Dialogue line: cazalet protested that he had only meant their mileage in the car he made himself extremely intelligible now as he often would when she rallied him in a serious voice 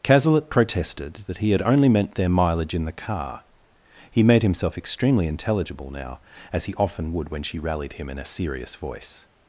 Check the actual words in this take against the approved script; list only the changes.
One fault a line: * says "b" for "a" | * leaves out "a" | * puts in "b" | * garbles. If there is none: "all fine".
all fine